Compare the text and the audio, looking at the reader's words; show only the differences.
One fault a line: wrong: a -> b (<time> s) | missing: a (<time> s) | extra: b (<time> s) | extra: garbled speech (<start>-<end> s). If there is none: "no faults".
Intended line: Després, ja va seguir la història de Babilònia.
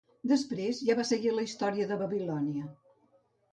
no faults